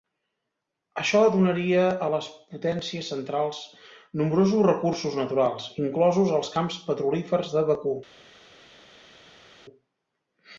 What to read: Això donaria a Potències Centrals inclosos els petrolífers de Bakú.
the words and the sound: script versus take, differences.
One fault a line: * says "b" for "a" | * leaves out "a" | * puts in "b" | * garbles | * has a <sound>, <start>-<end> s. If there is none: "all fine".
* puts in "les"
* puts in "nombrosos recursos naturals"
* puts in "camps"